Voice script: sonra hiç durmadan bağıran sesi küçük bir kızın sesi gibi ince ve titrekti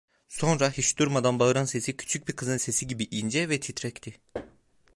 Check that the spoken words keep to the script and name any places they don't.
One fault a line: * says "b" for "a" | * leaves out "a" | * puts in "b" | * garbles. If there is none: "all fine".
all fine